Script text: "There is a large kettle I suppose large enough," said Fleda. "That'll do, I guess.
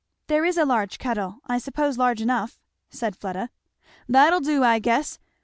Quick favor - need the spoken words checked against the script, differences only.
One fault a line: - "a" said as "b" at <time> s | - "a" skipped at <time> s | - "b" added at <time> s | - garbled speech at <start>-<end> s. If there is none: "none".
none